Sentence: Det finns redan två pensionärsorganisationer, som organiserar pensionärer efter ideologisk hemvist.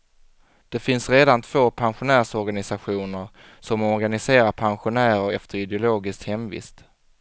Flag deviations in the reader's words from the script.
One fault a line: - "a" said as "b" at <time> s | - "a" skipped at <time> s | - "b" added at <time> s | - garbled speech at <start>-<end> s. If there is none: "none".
none